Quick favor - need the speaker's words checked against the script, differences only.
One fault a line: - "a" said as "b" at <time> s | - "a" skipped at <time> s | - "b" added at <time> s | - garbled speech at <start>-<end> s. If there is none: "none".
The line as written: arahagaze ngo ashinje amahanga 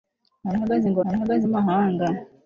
- "ashinje" said as "arahagaze" at 1.1 s